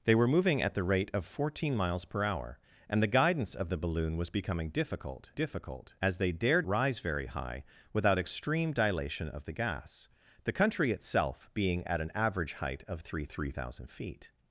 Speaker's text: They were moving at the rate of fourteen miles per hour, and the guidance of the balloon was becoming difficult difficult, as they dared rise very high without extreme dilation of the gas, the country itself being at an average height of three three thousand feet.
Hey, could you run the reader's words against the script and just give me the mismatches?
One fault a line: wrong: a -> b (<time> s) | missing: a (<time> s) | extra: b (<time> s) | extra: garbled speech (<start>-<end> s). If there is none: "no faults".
no faults